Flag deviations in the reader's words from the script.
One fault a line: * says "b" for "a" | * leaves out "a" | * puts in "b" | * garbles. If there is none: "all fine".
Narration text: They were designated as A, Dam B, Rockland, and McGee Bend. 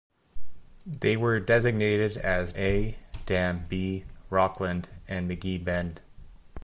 all fine